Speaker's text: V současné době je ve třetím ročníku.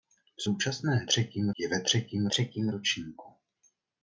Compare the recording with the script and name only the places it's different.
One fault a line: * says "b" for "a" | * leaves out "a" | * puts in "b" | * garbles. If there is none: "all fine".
* says "třetím" for "době"
* puts in "třetím"